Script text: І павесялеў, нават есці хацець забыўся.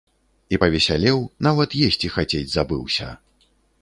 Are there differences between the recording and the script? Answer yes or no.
no